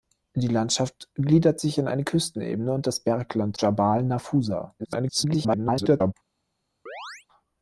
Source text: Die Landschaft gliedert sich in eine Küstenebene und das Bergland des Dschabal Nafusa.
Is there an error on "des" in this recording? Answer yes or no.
yes